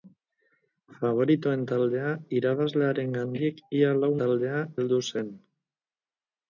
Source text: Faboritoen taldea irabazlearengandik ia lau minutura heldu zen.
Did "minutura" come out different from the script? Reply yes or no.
yes